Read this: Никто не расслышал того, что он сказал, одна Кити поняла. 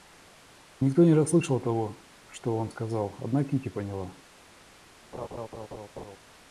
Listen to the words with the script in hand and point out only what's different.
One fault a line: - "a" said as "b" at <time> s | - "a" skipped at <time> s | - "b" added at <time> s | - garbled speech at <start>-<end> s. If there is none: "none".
none